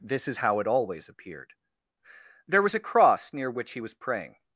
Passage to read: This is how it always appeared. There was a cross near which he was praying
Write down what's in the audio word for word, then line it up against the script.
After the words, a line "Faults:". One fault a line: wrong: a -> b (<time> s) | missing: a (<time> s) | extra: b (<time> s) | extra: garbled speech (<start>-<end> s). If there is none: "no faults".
This is how it always appeared. There was a cross near which he was praying
Faults:
no faults